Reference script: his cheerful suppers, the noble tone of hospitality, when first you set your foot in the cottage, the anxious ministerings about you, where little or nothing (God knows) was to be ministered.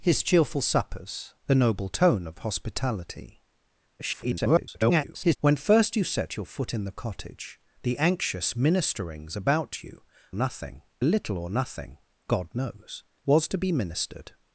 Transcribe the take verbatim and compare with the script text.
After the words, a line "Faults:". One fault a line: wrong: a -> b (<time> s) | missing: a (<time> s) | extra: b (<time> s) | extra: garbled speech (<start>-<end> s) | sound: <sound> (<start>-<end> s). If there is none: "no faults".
his cheerful suppers, the noble tone of hospitality, [garbled] when first you set your foot in the cottage, the anxious ministerings about you, nothing little or nothing (God knows) was to be ministered.
Faults:
extra: garbled speech (4.0-5.4 s)
wrong: where -> nothing (10.3 s)